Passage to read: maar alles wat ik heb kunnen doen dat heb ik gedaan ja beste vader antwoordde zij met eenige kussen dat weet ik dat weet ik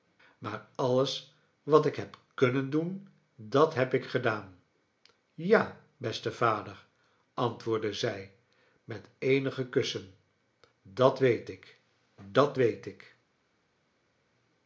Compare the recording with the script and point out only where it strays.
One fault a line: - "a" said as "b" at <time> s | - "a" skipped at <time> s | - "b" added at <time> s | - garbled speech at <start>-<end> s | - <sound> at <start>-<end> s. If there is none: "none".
none